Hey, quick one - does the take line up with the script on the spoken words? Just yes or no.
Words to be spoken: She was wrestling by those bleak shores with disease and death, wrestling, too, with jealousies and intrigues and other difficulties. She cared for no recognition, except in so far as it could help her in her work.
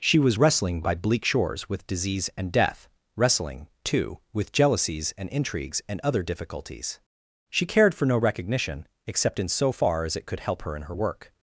no